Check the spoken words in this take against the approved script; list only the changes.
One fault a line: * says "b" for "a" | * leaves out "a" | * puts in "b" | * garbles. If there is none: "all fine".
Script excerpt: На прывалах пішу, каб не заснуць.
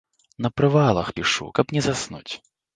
all fine